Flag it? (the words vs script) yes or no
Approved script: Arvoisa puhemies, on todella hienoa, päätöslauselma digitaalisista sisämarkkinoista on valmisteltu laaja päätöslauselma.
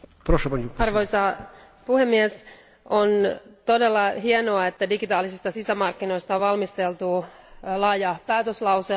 yes